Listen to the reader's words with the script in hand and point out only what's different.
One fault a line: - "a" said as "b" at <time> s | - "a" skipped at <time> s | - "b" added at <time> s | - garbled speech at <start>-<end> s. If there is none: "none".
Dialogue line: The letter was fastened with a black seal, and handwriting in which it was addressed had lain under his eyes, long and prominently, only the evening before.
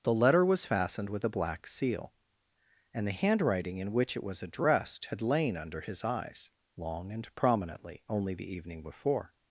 - "the" added at 3.0 s